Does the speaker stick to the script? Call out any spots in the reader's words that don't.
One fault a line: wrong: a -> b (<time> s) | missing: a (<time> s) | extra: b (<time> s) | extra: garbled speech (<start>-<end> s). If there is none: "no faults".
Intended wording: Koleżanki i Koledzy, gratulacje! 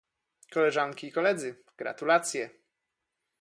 no faults